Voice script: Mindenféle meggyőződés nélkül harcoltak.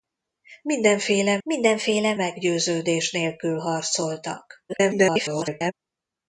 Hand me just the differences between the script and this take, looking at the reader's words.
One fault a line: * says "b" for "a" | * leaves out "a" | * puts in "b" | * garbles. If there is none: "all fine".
* puts in "mindenféle"
* garbles